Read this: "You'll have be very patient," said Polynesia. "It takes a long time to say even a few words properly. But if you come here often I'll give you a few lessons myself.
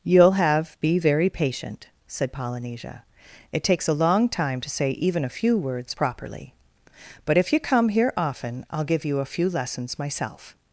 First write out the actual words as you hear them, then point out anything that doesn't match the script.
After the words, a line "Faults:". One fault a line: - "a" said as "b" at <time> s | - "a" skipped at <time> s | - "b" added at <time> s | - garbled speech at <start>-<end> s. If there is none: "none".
"You'll have be very patient," said Polynesia. "It takes a long time to say even a few words properly. But if you come here often I'll give you a few lessons myself.
Faults:
none